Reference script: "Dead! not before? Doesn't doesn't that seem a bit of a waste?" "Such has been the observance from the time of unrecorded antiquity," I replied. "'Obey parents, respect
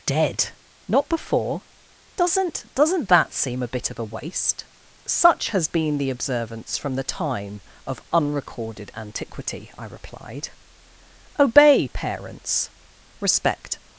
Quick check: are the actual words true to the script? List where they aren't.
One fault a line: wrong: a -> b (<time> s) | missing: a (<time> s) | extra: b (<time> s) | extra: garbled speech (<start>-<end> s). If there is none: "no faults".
no faults